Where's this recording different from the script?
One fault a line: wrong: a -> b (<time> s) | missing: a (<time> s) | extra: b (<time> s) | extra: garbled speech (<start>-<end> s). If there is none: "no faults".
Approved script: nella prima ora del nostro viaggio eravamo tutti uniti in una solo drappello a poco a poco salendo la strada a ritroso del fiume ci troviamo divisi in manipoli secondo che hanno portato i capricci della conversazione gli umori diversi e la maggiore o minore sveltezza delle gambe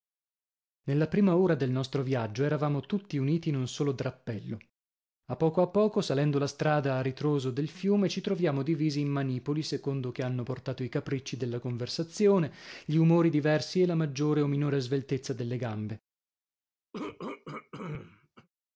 wrong: una -> un (3.5 s)